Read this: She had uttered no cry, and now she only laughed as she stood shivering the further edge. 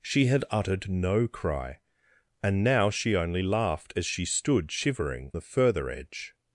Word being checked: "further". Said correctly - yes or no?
yes